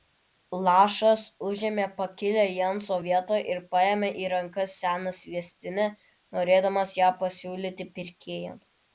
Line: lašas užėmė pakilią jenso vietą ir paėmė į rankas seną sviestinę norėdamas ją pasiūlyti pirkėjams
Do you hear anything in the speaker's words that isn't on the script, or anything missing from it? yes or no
no